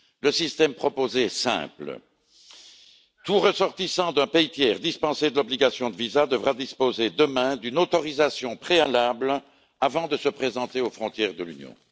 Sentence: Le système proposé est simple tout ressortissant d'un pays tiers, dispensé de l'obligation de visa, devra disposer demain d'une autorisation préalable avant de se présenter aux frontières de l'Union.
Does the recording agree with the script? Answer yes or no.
yes